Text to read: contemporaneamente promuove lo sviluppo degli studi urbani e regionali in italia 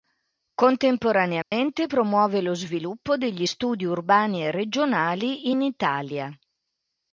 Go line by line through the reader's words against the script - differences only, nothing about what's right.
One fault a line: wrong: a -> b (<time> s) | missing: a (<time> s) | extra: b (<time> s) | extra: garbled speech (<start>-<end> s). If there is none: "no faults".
no faults